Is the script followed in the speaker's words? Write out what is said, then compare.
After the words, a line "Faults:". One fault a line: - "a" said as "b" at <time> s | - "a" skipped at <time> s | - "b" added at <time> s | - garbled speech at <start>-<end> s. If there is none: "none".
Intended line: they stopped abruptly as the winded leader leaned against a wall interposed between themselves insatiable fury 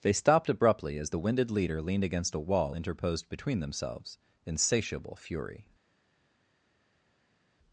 they stopped abruptly as the winded leader leaned against a wall interposed between themselves insatiable fury
Faults:
none